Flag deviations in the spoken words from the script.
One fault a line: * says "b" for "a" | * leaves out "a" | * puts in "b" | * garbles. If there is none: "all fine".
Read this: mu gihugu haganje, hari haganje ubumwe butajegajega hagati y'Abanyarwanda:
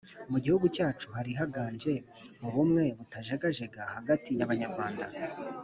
* says "cyacu" for "haganje"